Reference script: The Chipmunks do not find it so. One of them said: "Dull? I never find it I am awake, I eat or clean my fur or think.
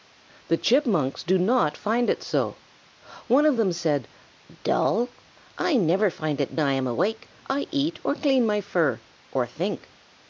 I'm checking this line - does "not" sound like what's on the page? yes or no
yes